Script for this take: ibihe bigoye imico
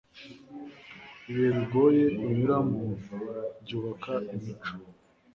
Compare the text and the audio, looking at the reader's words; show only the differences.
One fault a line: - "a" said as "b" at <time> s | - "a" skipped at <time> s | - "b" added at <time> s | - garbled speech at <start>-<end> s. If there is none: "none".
- "unyuramo byubaka" added at 2.3 s